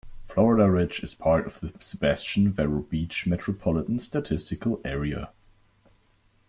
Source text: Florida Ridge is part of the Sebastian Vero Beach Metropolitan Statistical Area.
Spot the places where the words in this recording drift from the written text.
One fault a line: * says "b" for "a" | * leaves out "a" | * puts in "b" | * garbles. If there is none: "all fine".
all fine